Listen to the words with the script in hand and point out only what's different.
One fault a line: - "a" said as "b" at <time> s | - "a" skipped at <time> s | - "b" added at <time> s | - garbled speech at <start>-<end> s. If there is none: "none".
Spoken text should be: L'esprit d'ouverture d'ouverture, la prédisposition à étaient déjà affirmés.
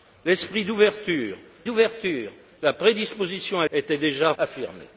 none